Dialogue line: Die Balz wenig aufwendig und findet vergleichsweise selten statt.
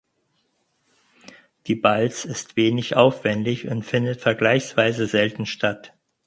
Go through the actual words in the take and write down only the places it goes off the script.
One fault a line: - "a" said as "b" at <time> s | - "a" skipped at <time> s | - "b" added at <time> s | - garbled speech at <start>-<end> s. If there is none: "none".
- "ist" added at 2.2 s